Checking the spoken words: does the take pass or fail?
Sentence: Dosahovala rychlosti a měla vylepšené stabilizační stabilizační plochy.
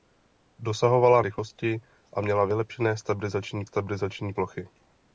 pass